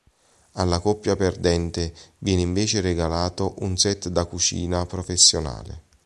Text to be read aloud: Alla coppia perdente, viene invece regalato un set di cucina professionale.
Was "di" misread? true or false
true